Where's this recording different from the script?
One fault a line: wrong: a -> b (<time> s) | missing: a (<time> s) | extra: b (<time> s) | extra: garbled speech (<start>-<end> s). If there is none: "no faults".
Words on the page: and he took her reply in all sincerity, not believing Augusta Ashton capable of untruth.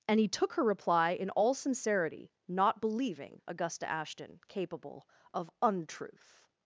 no faults